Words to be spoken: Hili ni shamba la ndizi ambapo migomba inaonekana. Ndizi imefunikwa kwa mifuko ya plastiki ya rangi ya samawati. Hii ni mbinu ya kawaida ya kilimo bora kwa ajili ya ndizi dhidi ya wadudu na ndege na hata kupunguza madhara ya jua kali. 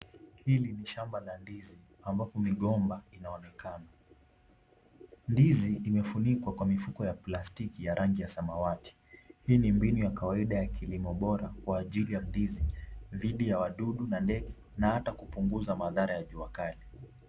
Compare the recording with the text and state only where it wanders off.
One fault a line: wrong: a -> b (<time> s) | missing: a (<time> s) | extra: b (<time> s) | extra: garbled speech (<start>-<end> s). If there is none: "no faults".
no faults